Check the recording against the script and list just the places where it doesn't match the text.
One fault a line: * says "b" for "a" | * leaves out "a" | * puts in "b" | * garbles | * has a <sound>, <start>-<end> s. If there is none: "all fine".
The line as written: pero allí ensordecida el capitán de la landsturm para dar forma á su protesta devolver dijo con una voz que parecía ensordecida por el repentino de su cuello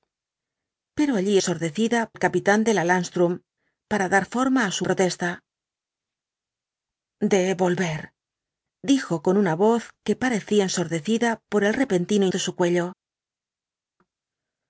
all fine